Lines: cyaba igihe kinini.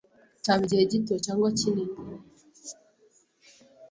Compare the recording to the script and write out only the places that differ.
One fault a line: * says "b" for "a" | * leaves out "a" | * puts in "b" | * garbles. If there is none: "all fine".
* puts in "gito cyangwa"